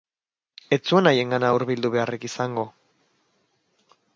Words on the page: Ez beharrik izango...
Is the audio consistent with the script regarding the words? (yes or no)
no